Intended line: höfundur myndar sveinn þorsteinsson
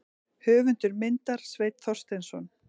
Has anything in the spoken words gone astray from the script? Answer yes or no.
no